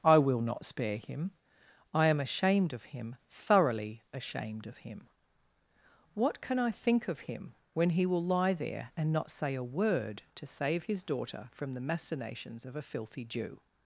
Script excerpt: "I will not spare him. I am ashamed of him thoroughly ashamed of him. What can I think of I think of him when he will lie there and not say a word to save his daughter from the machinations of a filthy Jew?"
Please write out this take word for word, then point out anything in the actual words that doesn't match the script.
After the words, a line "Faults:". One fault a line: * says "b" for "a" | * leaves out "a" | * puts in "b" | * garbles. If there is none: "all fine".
"I will not spare him. I am ashamed of him thoroughly ashamed of him. What can I think of him when he will lie there and not say a word to save his daughter from the machinations of a filthy Jew?"
Faults:
* leaves out "I think of"